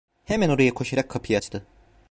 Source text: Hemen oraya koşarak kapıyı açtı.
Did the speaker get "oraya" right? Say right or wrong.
right